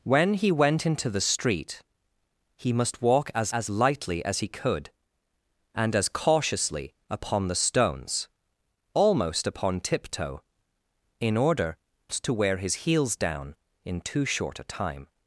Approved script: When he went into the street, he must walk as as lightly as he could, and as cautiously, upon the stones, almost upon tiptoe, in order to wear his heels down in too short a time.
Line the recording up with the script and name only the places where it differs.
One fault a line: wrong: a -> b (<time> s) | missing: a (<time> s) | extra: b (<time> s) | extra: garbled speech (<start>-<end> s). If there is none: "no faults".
no faults